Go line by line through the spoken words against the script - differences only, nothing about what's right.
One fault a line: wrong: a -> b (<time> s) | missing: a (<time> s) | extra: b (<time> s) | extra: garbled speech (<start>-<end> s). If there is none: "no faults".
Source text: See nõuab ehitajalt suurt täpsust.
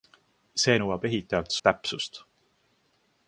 missing: suurt (1.6 s)